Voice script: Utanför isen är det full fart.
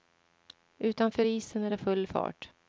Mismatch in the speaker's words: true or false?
false